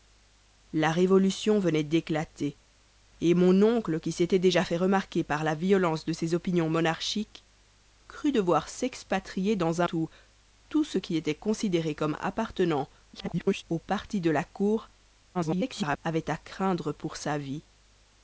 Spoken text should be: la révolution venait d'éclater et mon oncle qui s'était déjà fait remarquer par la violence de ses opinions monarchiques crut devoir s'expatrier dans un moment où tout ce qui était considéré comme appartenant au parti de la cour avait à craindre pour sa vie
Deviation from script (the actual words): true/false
true